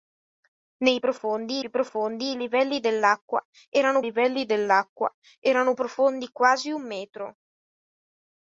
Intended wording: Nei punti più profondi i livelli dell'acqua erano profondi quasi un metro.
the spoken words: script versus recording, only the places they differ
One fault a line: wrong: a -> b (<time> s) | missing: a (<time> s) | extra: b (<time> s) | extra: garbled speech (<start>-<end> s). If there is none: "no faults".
wrong: punti -> profondi (1.0 s)
extra: livelli dell'acqua erano (4.0 s)